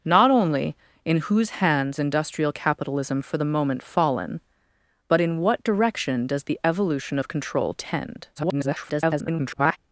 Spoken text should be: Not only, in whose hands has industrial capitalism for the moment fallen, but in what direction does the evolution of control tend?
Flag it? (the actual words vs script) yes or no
yes